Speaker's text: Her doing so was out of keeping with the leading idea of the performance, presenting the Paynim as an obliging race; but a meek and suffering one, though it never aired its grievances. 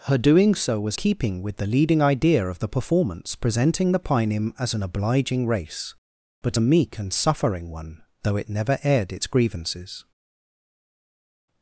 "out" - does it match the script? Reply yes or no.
no